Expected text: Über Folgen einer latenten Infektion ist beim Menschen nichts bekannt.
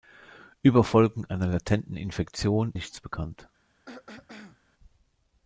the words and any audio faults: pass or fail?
fail